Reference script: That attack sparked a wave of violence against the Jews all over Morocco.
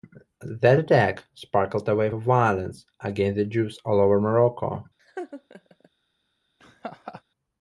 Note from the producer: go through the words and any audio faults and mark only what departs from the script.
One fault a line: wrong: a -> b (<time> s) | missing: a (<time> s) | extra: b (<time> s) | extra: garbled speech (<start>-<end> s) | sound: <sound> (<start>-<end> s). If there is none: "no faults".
sound: laugh (5.0-5.9 s)
sound: laugh (6.6-7.2 s)